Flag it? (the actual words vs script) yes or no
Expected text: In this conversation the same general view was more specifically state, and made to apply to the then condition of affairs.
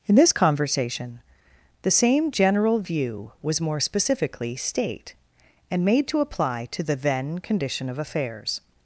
no